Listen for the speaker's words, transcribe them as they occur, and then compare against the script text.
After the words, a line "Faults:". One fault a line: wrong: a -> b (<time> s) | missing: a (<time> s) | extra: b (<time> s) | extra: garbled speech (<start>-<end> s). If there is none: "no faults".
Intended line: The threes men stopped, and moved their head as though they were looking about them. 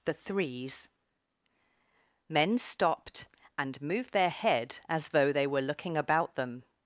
The threes men stopped, and moved their head as though they were looking about them.
Faults:
no faults